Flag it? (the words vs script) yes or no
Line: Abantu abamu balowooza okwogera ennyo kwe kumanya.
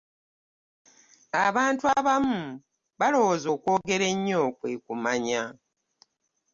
no